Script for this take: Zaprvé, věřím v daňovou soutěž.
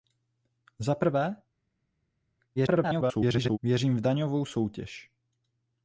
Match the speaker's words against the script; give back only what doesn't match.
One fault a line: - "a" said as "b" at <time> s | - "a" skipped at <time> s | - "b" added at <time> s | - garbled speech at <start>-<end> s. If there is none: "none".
- garbled speech at 2.6-3.6 s